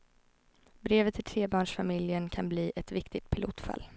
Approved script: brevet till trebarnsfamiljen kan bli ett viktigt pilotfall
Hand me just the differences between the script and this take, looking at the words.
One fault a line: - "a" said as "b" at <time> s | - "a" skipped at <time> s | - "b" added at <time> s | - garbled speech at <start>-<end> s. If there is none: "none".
none